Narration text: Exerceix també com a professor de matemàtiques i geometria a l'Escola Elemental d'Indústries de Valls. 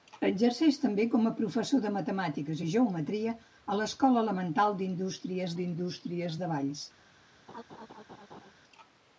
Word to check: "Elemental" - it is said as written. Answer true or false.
true